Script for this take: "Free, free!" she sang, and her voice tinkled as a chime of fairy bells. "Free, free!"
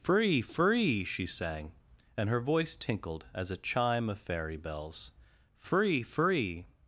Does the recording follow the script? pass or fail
pass